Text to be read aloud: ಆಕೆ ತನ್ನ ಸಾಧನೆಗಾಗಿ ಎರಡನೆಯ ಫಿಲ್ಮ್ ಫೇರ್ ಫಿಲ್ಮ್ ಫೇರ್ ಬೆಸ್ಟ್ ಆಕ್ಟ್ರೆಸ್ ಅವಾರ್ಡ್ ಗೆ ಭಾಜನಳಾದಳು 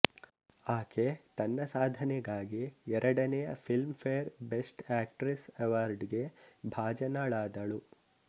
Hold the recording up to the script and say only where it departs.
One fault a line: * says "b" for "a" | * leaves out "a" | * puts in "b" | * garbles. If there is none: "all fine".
* leaves out "ಫಿಲ್ಮ್ ಫೇರ್"